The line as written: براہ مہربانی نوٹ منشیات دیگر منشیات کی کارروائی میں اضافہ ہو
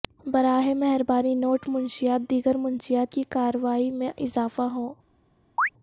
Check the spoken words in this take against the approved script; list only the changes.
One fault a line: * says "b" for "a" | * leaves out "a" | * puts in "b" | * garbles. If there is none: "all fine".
all fine